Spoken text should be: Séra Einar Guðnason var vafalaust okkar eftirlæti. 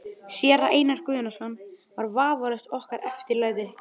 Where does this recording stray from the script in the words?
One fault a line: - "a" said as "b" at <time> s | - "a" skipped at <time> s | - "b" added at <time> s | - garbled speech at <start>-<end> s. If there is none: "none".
none